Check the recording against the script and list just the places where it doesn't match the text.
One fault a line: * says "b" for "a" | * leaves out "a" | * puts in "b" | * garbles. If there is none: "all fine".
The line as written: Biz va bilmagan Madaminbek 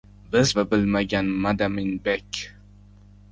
all fine